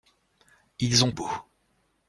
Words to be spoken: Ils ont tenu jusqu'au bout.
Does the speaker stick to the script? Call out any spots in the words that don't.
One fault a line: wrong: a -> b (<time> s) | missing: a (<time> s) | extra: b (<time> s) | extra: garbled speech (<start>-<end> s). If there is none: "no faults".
missing: tenu jusqu'au (1.1 s)